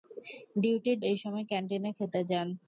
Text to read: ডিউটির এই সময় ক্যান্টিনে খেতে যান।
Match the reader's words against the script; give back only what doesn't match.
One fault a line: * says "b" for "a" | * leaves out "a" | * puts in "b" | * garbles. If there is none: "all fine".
all fine